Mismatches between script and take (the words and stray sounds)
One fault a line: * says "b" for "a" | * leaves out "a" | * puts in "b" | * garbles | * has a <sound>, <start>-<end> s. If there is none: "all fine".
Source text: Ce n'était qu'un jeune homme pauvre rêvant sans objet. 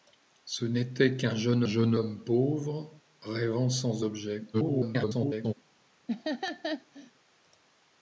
* puts in "jeune"
* garbles
* has a laugh, 6.1-7.1 s